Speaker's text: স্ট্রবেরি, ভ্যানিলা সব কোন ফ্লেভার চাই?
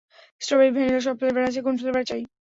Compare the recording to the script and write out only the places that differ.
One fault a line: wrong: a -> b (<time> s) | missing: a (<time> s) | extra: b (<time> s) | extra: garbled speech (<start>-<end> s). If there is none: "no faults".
extra: ফ্লেভার আছে (1.2 s)